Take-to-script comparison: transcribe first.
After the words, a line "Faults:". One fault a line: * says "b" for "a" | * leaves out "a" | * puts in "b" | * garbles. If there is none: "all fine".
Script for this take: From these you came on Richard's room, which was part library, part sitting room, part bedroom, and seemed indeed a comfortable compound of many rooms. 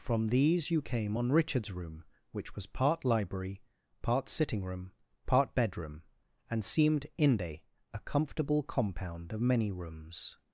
From these you came on Richard's room, which was part library, part sitting room, part bedroom, and seemed inde a comfortable compound of many rooms.
Faults:
* says "inde" for "indeed"